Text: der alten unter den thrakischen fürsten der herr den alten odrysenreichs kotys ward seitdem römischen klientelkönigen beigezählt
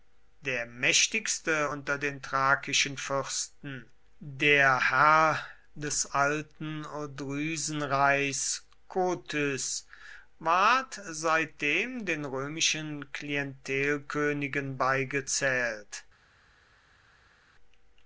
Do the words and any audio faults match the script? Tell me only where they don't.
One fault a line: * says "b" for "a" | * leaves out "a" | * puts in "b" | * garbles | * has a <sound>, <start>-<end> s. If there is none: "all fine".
* says "mächtigste" for "alten"
* says "des" for "den"
* puts in "den"